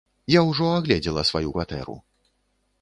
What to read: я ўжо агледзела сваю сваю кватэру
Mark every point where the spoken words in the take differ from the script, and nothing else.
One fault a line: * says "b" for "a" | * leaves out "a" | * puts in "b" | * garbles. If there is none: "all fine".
* leaves out "сваю"